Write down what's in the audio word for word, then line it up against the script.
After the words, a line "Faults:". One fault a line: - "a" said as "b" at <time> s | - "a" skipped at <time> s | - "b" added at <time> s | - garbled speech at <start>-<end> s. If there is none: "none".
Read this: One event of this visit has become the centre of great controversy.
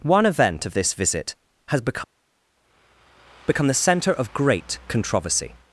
One event of this visit has become become the centre of great controversy.
Faults:
- "become" added at 3.5 s